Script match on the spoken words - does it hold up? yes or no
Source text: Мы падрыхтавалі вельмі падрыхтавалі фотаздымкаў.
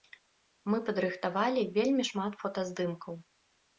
no